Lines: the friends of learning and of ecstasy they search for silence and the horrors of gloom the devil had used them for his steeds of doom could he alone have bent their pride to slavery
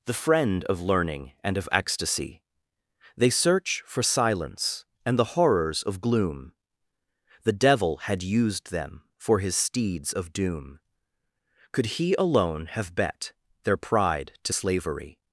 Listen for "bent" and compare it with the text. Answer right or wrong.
wrong